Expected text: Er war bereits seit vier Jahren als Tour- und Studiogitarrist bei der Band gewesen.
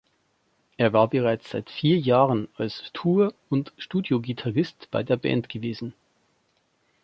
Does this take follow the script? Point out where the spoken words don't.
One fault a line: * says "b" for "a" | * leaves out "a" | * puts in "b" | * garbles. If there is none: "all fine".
all fine